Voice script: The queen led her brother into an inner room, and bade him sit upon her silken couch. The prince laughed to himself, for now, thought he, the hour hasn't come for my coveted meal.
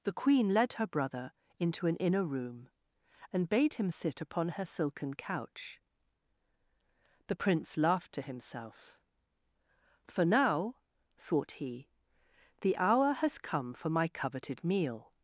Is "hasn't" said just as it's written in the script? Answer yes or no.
no